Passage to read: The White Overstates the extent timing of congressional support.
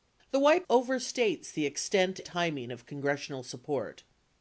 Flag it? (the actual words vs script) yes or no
no